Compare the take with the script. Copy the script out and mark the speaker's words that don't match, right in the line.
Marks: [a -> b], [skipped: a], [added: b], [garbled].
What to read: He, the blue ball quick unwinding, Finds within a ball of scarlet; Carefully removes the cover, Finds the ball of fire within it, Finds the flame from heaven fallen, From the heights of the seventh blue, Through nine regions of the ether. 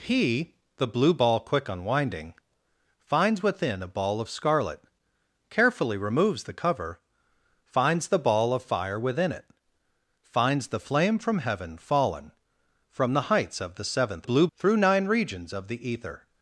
He, the blue ball quick unwinding, Finds within a ball of scarlet; Carefully removes the cover, Finds the ball of fire within it, Finds the flame from heaven fallen, From the heights of the seventh blue, Through nine regions of the ether.